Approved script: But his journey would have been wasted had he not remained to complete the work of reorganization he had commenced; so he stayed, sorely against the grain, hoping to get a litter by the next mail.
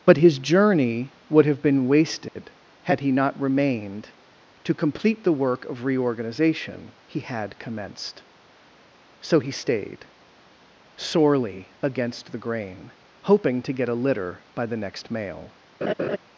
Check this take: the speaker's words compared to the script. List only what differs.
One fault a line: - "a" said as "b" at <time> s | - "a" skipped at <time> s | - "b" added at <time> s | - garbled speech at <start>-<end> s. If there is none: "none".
none